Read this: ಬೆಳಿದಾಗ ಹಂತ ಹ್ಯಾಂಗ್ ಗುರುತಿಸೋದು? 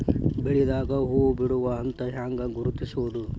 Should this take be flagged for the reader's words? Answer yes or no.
yes